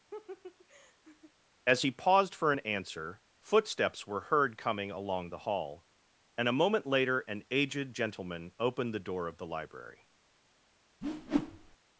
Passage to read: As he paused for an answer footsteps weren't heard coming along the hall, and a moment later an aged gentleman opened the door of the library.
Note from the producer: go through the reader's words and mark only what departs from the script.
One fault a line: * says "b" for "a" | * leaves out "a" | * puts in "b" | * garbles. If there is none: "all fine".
* says "were" for "weren't"